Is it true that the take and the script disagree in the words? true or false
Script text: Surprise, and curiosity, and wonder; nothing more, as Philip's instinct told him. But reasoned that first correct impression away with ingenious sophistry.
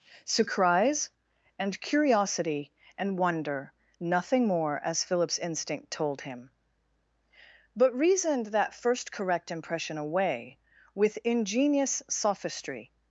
false